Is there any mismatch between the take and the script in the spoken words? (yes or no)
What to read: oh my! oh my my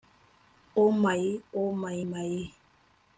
no